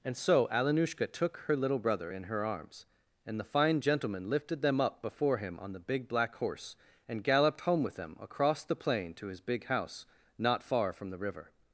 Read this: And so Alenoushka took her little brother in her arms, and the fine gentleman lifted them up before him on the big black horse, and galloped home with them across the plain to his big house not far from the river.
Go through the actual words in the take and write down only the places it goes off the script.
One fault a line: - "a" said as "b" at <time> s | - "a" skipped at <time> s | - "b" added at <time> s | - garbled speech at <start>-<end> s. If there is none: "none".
none